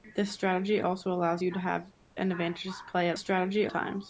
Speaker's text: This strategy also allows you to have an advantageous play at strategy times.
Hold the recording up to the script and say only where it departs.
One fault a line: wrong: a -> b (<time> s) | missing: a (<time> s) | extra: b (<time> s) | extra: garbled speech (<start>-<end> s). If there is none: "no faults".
no faults